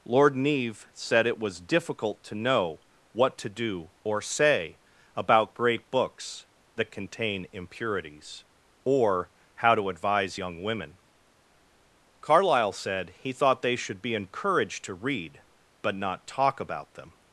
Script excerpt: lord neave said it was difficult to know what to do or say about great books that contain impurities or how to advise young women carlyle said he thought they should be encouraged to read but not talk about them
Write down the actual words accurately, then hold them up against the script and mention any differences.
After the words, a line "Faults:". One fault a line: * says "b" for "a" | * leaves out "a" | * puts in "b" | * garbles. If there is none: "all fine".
lord neave said it was difficult to know what to do or say about great books that contain impurities or how to advise young women carlyle said he thought they should be encouraged to read but not talk about them
Faults:
all fine